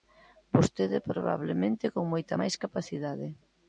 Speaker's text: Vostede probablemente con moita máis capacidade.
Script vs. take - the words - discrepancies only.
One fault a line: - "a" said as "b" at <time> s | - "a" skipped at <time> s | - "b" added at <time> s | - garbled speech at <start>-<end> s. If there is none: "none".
none